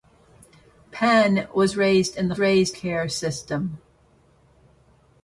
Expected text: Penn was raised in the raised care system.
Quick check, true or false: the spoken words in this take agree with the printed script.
true